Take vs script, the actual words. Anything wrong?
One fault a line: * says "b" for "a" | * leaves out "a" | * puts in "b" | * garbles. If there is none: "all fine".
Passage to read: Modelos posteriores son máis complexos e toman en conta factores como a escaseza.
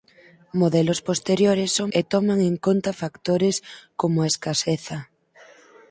* leaves out "máis complexos"